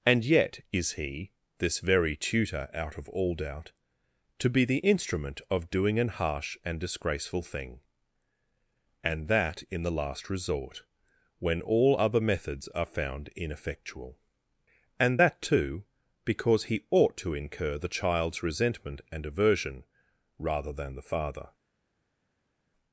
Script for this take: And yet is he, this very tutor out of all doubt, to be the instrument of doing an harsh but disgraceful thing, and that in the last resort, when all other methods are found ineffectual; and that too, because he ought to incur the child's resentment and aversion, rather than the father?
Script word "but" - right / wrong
wrong